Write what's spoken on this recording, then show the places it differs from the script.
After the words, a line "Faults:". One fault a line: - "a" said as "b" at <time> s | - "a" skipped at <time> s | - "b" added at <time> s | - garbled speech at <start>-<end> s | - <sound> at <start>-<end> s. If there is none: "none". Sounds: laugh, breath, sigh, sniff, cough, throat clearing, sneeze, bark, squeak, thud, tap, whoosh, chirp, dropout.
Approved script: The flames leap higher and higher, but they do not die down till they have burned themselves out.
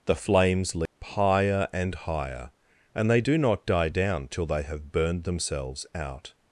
The flames leap higher and higher, and they do not die down till they have burned themselves out.
Faults:
- dropout at 0.9-1.0 s
- "but" said as "and" at 3.0 s